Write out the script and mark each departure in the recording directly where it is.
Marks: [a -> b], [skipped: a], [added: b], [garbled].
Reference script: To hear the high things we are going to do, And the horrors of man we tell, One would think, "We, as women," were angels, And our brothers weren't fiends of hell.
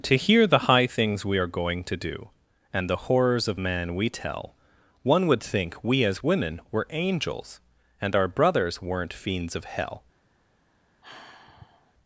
To hear the high things we are going to do, And the horrors of man we tell, One would think, "We, as women," were angels, And our brothers weren't fiends of hell.